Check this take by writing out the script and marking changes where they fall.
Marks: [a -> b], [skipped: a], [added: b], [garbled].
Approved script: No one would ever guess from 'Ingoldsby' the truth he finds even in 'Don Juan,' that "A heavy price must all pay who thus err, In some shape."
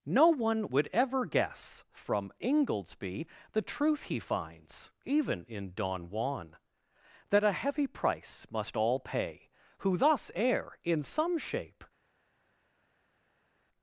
No one would ever guess from 'Ingoldsby' the truth he finds even in 'Don Juan,' that "A heavy price must all pay who thus err, In some shape."